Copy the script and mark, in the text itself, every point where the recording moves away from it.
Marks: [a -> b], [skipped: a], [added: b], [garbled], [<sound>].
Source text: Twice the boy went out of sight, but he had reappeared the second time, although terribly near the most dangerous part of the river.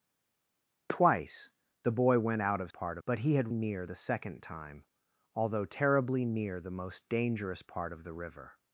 Twice the boy went out of [sight, -> part] but he had [reappeared -> near] the second time, although terribly near the most dangerous part of the river.